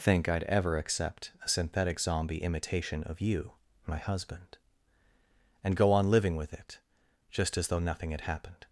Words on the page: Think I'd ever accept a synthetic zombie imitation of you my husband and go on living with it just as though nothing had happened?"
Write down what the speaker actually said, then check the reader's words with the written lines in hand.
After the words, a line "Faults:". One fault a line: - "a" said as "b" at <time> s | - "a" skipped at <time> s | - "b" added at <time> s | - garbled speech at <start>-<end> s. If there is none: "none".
Think I'd ever accept a synthetic zombie imitation of you my husband and go on living with it just as though nothing had happened?"
Faults:
none